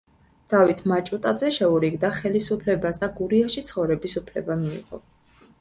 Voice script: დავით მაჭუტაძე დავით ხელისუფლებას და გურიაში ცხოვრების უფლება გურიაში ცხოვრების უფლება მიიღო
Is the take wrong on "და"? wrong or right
right